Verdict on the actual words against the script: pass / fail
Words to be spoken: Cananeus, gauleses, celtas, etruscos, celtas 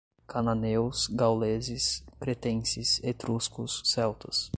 fail